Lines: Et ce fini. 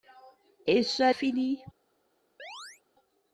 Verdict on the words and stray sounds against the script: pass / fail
fail